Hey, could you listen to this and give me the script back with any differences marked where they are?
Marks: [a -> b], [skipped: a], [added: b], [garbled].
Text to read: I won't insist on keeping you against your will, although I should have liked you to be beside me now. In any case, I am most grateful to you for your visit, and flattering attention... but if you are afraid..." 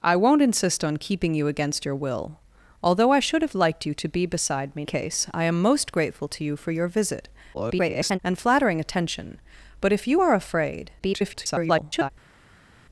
I won't insist on keeping you against your will, although I should have liked you to be beside me [skipped: now. In any] case, I am most grateful to you for your visit, [garbled] and flattering attention... but if you are afraid..." [garbled]